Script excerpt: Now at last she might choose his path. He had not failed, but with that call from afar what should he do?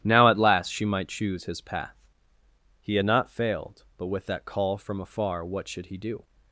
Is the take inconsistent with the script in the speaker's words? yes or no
no